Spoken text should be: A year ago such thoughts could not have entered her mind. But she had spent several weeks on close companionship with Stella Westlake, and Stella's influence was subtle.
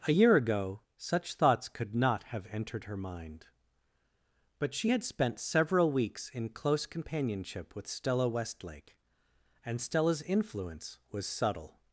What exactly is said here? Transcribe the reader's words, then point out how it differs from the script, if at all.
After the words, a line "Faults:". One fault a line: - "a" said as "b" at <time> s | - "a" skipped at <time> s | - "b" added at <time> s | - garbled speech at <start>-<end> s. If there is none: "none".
A year ago such thoughts could not have entered her mind. But she had spent several weeks in close companionship with Stella Westlake, and Stella's influence was subtle.
Faults:
- "on" said as "in" at 6.3 s